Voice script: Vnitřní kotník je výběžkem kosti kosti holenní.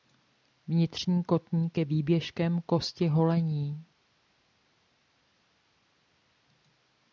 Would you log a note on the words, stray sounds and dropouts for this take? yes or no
yes